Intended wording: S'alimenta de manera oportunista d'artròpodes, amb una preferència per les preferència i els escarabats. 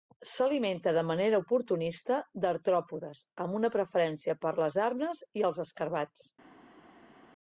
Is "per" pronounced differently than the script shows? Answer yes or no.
no